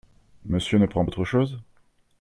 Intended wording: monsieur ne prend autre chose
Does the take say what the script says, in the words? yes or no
yes